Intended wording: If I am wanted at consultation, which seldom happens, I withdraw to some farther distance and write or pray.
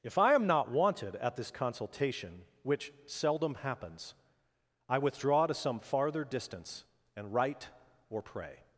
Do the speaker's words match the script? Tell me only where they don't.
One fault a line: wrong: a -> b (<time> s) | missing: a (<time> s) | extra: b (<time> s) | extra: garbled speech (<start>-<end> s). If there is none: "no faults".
extra: not (0.5 s)
extra: this (1.4 s)